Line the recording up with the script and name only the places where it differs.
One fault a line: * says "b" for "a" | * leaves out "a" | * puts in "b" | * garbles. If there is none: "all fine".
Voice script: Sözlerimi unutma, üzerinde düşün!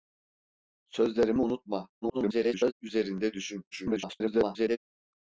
* garbles
* garbles